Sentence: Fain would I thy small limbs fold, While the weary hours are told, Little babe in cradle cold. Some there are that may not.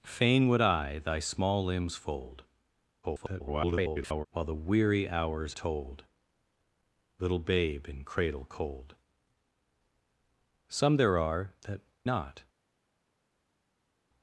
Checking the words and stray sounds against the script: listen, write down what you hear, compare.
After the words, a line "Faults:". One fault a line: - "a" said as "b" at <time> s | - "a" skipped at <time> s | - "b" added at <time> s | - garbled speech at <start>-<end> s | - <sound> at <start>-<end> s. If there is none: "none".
Fain would I thy small limbs fold, [garbled] While the weary hours told, Little babe in cradle cold. Some there are that not.
Faults:
- garbled speech at 3.0-4.3 s
- "are" skipped at 5.6 s
- "may" skipped at 11.8 s